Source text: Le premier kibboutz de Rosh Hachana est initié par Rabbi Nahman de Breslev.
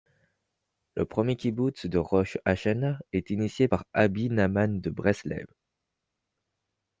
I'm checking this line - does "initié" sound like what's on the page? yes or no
yes